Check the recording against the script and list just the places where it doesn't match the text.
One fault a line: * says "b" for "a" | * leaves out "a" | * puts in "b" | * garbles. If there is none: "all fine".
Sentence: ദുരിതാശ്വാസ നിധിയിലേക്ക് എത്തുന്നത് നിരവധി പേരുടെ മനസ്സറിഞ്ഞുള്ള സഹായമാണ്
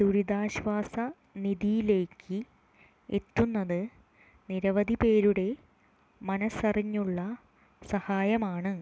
all fine